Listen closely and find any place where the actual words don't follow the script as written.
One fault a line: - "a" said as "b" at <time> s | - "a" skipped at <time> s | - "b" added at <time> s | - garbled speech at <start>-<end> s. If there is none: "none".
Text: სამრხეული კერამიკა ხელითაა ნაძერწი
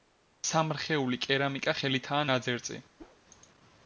none